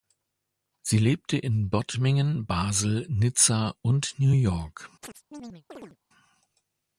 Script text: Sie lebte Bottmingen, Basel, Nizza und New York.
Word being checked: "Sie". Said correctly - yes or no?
yes